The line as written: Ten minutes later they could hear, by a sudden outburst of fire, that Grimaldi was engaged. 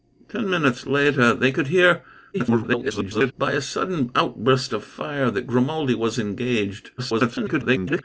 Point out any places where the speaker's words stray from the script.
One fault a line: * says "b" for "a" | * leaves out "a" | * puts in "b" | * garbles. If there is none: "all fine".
* garbles
* garbles